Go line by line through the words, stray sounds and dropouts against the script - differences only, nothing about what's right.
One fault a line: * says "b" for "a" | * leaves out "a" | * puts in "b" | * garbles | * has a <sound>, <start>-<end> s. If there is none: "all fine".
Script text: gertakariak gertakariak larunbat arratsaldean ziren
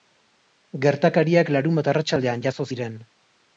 * leaves out "gertakariak"
* puts in "jazo"